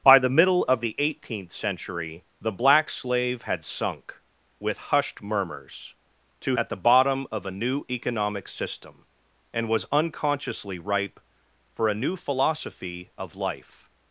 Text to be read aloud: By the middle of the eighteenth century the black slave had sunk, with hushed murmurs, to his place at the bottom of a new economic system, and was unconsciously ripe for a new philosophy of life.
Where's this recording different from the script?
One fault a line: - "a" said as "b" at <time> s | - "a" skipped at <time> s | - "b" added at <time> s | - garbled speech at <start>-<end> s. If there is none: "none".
- "his place" skipped at 6.6 s